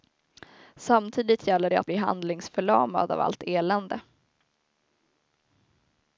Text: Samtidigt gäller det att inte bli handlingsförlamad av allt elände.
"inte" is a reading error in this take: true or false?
true